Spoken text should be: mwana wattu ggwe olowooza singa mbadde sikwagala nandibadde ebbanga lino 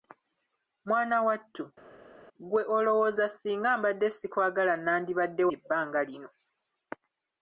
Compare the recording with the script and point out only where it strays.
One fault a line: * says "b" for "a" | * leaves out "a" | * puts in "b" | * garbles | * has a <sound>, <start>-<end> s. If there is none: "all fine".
all fine